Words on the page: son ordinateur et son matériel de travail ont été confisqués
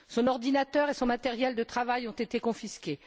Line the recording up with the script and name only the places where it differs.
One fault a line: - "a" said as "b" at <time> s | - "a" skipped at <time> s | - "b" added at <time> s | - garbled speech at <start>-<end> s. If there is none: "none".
none